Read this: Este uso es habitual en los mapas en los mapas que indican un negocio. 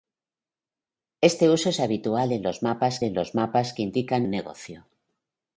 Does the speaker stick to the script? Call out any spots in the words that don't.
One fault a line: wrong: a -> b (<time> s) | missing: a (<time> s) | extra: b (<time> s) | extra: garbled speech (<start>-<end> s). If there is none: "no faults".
no faults